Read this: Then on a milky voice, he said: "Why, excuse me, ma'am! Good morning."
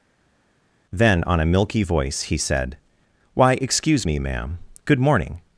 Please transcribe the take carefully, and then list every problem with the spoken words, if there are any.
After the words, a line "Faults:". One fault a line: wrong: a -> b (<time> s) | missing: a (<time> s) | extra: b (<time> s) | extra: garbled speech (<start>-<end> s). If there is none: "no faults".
Then on a milky voice, he said: "Why, excuse me, ma'am! Good morning."
Faults:
no faults